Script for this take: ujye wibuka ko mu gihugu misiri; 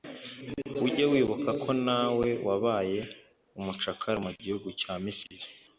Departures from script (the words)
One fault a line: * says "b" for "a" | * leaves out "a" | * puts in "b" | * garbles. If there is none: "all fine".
* puts in "nawe wabaye umucakara"
* puts in "cya"